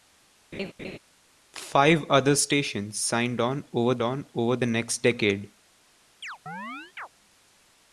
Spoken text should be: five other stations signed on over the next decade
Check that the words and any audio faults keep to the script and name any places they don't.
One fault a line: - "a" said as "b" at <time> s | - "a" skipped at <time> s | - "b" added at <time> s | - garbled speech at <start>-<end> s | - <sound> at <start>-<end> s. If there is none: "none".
- laugh at 0.5-1.0 s
- "on over the" added at 4.0 s
- chirp at 6.2-7.1 s